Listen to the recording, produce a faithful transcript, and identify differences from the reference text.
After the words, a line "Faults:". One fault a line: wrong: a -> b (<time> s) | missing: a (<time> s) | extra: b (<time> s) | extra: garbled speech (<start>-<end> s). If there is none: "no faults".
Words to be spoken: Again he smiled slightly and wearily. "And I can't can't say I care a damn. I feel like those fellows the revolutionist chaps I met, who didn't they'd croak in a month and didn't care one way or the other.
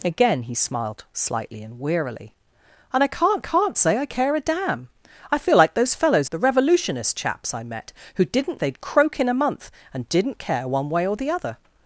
Again he smiled slightly and wearily. "And I can't can't say I care a damn. I feel like those fellows the revolutionist chaps I met, who didn't they'd croak in a month and didn't care one way or the other.
Faults:
no faults